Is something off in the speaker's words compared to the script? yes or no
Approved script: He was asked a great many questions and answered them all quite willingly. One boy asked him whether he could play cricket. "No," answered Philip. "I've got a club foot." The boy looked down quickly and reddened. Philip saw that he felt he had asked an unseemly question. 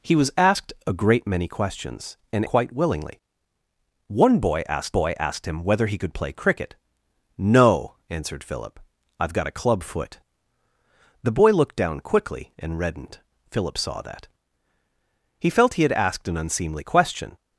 yes